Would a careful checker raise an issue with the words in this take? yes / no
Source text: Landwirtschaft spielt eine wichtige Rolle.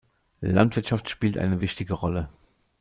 no